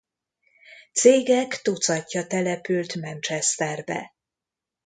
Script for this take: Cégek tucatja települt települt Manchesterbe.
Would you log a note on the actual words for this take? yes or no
yes